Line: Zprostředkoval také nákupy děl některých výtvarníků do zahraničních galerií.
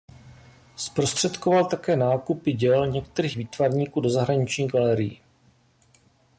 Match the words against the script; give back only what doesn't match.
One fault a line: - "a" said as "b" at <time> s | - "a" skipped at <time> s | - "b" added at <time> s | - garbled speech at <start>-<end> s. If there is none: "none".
none